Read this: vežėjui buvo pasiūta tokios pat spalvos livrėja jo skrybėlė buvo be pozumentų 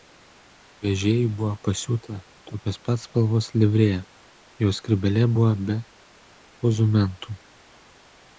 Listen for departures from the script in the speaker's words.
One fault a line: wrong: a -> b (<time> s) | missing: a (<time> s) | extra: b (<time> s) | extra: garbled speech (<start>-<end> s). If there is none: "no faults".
no faults